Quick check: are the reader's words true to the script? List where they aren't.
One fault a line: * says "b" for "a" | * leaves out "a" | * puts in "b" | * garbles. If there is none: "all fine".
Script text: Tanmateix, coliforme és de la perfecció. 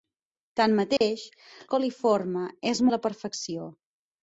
all fine